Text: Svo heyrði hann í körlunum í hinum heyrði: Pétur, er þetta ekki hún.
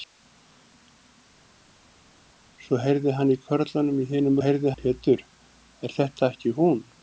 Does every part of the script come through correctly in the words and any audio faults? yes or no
yes